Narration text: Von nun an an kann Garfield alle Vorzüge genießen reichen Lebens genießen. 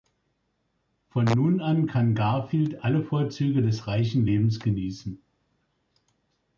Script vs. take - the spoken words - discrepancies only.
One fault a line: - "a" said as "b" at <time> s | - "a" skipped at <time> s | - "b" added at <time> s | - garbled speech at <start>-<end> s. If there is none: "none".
- "an" skipped at 1.9 s
- "genießen" said as "des" at 3.6 s